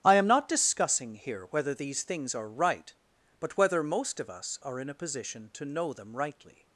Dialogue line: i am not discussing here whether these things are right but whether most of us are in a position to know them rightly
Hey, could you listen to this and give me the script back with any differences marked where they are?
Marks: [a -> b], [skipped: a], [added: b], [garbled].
i am not discussing here whether these things are right but whether most of us are in a position to know them rightly